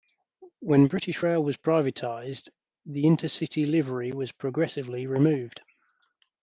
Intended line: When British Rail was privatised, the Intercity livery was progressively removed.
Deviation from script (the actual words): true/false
false